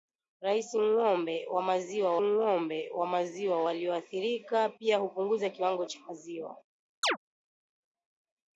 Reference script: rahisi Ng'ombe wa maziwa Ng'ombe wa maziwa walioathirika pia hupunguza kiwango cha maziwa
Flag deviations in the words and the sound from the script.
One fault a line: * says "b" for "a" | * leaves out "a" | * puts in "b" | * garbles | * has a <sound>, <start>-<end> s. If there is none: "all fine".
* has a chirp, 7.0-7.2 s